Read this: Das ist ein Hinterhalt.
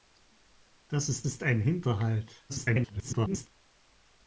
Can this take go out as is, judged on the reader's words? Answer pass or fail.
fail